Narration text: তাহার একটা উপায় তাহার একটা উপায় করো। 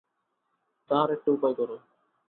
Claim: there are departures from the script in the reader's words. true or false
true